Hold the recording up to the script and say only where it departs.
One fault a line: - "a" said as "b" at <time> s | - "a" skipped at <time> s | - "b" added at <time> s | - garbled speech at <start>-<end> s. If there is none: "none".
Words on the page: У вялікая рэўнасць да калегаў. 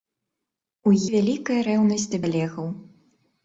none